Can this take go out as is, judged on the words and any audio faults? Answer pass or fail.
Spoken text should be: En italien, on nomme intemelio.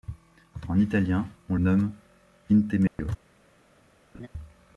fail